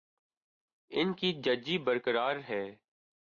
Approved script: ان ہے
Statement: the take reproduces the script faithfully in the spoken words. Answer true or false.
false